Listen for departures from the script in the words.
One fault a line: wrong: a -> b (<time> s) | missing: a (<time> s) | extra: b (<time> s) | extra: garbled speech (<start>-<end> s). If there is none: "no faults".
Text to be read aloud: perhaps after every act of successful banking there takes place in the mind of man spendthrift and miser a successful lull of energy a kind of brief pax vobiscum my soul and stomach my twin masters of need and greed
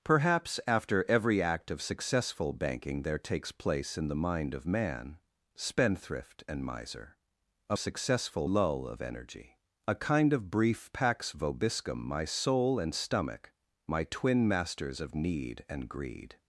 no faults